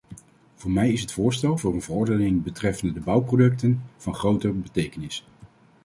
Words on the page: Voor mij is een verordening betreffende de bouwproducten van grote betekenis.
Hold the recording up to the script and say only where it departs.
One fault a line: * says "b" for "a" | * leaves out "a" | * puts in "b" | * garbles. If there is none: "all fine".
* puts in "het voorstel voor"